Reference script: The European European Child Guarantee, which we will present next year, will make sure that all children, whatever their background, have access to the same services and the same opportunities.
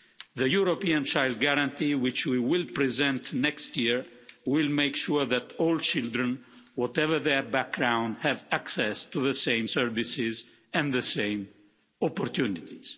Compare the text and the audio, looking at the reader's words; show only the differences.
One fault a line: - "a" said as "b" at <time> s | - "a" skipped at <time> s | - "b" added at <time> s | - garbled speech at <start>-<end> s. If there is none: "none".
- "European" skipped at 1.0 s